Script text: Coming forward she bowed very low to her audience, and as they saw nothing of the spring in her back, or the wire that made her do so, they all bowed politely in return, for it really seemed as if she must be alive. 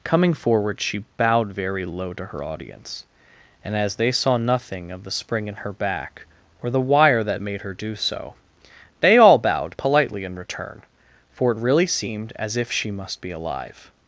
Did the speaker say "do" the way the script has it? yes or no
yes